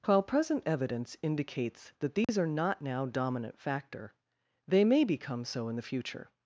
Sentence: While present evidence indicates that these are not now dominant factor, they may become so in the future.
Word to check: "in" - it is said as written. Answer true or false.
true